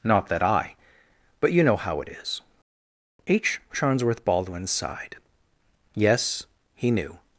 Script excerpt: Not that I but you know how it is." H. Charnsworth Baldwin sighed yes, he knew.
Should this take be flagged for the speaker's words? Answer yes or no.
no